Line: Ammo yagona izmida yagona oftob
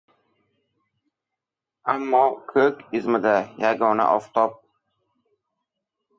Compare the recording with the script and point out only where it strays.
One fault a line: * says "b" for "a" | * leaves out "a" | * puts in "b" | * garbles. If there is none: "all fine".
* says "ko‘k" for "yagona"